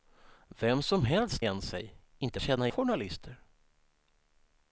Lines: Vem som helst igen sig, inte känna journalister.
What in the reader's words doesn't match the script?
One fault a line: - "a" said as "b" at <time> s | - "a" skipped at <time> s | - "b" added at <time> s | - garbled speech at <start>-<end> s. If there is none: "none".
none